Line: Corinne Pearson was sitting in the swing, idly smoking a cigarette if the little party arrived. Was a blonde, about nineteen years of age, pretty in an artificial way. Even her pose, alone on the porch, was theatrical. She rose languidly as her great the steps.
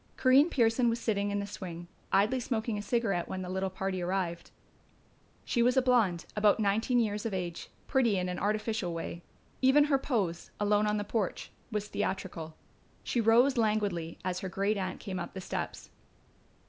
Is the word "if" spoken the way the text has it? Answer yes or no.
no